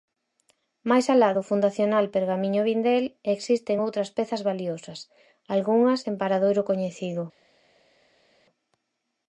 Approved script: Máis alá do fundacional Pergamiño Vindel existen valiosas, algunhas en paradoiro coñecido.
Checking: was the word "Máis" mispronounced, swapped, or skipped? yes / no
no